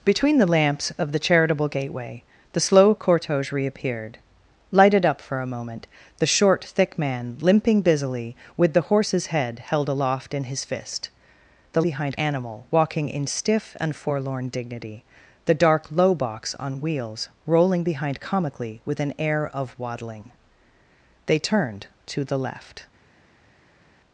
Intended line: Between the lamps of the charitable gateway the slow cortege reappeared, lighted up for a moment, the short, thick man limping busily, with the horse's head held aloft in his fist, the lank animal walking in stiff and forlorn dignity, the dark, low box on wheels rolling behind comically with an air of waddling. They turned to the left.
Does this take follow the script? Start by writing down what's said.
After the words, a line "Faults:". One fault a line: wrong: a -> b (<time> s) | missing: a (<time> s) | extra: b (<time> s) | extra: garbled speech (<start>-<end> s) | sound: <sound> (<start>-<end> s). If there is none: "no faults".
Between the lamps of the charitable gateway the slow cortege reappeared, lighted up for a moment, the short, thick man limping busily, with the horse's head held aloft in his fist, the behind animal walking in stiff and forlorn dignity, the dark, low box on wheels rolling behind comically with an air of waddling. They turned to the left.
Faults:
wrong: lank -> behind (11.8 s)